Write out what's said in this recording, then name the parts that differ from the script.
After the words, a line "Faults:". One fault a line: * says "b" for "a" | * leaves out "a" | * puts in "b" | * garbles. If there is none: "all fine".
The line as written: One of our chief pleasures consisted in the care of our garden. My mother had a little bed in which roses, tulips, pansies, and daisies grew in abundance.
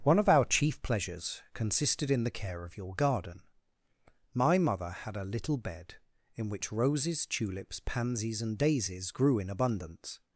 One of our chief pleasures consisted in the care of your garden. My mother had a little bed in which roses, tulips, pansies, and daisies grew in abundance.
Faults:
* says "your" for "our"